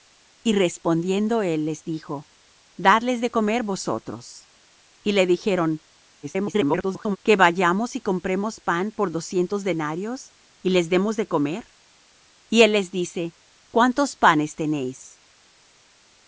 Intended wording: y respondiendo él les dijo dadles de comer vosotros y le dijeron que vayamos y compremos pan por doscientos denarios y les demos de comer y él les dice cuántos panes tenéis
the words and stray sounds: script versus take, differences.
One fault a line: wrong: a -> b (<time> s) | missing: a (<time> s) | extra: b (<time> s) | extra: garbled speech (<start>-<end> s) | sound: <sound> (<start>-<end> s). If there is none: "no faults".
extra: garbled speech (6.2-7.2 s)